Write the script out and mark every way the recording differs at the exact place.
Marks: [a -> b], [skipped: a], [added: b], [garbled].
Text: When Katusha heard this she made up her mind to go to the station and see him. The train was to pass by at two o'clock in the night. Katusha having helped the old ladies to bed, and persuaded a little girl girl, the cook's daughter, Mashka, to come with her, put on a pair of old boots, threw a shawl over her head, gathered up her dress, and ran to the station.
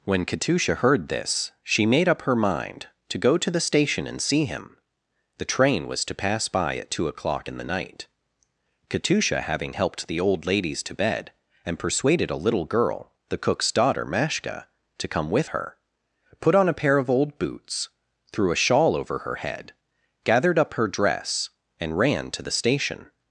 When Katusha heard this she made up her mind to go to the station and see him. The train was to pass by at two o'clock in the night. Katusha having helped the old ladies to bed, and persuaded a little girl [skipped: girl,] the cook's daughter, Mashka, to come with her, put on a pair of old boots, threw a shawl over her head, gathered up her dress, and ran to the station.